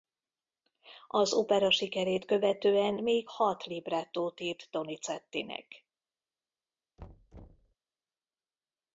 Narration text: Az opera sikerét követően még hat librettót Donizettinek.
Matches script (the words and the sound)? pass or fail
fail